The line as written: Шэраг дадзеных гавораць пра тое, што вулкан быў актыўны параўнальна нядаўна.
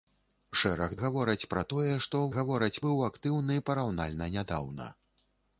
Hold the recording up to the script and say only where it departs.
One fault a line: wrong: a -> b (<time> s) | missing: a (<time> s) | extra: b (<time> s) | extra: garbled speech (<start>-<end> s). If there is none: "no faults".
missing: дадзеных (0.9 s)
wrong: вулкан -> гавораць (2.4 s)